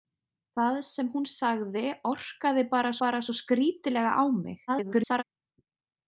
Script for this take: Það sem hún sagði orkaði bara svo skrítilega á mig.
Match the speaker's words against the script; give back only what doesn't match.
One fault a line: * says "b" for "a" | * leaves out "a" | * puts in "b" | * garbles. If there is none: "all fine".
* puts in "bara"
* garbles